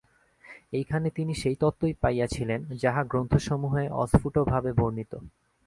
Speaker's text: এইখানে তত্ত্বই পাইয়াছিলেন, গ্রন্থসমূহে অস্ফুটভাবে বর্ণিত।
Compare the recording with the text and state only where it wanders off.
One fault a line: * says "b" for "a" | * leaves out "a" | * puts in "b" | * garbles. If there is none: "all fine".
* puts in "তিনি সেই"
* puts in "যাহা"